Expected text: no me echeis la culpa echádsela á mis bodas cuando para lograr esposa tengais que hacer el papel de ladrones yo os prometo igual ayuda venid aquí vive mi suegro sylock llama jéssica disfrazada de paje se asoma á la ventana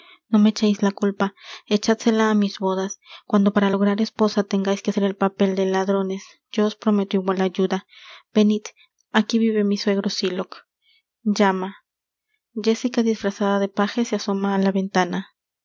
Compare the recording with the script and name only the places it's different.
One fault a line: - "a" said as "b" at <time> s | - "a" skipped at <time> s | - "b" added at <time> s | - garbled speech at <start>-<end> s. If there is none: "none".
none